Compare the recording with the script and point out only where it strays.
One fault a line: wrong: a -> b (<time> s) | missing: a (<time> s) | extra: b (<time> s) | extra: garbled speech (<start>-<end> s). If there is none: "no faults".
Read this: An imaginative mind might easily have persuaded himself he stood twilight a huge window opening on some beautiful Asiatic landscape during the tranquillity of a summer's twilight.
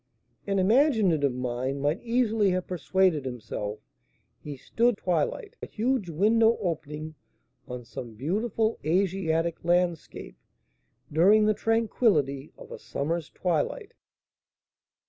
no faults